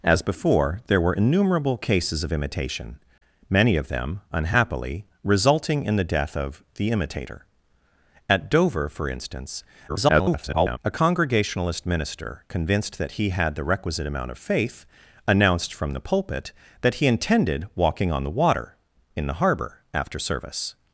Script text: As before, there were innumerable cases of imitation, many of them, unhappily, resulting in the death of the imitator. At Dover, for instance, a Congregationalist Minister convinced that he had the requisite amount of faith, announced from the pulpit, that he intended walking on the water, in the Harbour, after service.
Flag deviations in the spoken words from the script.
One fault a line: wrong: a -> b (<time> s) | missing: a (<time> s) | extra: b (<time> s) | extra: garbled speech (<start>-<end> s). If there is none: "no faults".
extra: garbled speech (9.9-10.8 s)